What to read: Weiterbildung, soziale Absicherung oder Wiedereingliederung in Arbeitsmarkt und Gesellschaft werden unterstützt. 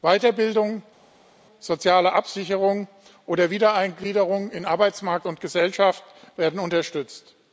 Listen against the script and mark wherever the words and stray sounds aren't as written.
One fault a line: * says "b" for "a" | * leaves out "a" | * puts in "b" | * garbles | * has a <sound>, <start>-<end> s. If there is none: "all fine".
all fine